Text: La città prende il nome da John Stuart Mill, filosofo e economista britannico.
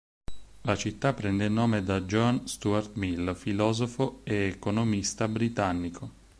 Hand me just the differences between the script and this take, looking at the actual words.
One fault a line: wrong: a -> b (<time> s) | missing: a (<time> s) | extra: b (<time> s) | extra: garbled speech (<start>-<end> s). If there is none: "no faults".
no faults